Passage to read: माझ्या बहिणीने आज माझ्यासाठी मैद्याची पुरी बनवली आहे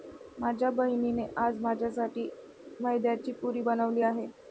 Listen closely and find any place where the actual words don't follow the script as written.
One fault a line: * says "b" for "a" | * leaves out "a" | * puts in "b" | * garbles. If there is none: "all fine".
all fine